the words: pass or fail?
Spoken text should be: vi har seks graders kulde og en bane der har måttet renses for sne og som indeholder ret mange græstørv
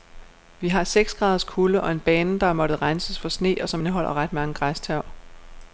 pass